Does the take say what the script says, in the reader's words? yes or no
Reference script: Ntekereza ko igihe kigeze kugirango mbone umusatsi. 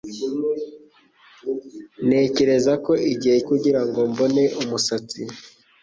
no